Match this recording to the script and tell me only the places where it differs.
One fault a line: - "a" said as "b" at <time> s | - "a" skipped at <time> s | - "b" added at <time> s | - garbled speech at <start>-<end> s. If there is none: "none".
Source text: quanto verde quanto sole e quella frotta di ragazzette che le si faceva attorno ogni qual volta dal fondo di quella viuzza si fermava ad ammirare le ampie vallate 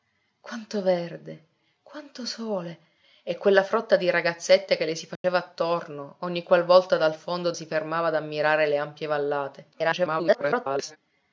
- "di quella viuzza" skipped at 7.5 s
- garbled speech at 9.7-11.0 s